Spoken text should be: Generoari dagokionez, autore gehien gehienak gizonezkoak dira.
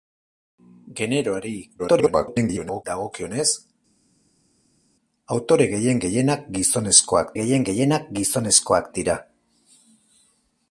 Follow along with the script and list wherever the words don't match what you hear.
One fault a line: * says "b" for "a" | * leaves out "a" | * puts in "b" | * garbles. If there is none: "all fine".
* garbles
* puts in "gehien gehienak gizonezkoak"